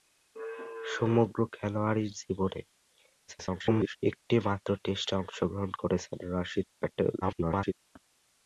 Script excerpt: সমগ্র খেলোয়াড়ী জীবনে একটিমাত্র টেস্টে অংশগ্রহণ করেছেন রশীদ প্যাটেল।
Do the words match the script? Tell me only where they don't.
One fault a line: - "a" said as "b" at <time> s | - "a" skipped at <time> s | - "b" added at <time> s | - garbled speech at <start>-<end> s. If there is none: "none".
- garbled speech at 3.3-4.0 s
- garbled speech at 7.2-7.7 s